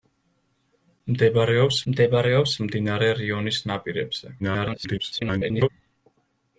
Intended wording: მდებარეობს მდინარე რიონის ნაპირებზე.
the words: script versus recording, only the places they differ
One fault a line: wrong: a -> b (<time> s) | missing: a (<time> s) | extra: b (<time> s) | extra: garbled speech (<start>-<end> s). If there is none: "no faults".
extra: მდებარეობს (1.9 s)
extra: garbled speech (4.4-5.7 s)